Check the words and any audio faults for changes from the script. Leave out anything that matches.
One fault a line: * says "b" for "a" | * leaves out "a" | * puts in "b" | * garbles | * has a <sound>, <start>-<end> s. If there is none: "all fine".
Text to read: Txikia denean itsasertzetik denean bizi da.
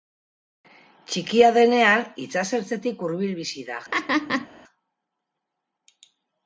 * says "hurbil" for "denean"
* has a laugh, 3.9-4.5 s